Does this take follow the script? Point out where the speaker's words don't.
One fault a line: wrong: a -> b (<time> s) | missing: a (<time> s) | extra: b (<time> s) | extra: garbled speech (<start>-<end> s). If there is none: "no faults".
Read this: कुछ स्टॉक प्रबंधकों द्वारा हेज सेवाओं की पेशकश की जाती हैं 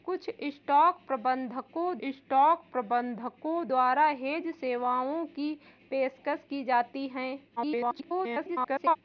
extra: स्टॉक प्रबंधकों (2.1 s)
extra: garbled speech (7.6-9.0 s)